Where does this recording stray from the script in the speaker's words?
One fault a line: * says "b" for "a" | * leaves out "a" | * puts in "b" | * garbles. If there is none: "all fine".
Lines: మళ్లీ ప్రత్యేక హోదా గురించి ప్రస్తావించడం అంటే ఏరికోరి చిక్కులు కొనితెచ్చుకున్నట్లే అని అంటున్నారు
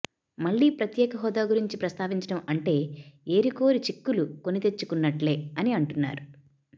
all fine